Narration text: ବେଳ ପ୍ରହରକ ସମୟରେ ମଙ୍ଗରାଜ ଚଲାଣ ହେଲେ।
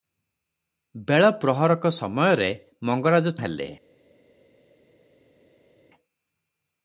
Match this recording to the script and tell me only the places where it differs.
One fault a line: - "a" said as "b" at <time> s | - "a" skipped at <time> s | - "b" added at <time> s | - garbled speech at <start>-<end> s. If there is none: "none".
- "ଚଲାଣ" skipped at 3.4 s